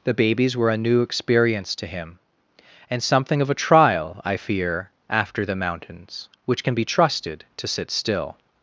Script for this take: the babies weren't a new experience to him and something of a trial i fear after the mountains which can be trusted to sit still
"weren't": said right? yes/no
no